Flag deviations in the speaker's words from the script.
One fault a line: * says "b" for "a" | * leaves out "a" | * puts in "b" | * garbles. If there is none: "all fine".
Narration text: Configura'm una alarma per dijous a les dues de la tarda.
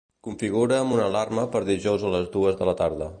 all fine